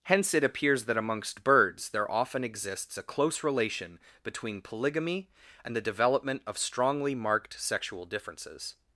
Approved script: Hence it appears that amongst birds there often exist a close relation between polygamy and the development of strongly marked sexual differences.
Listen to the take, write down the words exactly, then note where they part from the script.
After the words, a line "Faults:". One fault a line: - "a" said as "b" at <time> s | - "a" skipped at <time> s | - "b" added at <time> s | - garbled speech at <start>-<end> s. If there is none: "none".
Hence it appears that amongst birds there often exists a close relation between polygamy and the development of strongly marked sexual differences.
Faults:
- "exist" said as "exists" at 2.4 s